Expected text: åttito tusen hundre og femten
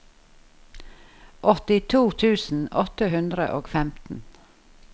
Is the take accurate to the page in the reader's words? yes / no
no